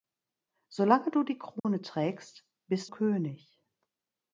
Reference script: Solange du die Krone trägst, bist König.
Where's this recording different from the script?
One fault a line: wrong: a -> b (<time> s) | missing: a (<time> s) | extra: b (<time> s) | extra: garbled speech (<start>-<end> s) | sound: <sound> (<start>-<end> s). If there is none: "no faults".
sound: dropout (1.6-1.6 s)